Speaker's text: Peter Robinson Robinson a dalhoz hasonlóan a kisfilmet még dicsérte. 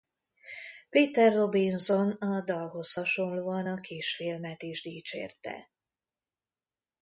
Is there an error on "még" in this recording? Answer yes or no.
yes